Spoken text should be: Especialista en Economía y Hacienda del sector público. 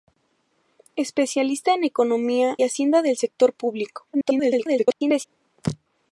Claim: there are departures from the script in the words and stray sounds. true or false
true